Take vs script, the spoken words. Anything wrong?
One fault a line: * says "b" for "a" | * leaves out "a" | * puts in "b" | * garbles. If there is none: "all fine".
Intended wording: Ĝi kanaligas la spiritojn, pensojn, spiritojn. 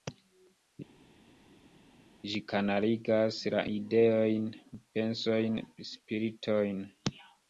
* says "ideojn" for "spiritojn"